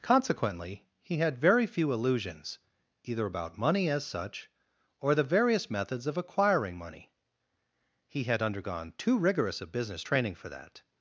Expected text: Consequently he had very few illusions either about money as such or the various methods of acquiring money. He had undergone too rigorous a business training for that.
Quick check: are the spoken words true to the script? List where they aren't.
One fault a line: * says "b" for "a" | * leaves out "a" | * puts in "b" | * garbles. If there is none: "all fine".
all fine